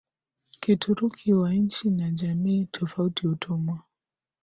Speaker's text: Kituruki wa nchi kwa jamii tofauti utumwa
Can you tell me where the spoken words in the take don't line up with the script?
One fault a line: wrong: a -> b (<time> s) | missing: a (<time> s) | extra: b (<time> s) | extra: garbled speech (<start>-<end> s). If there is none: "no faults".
wrong: kwa -> na (1.9 s)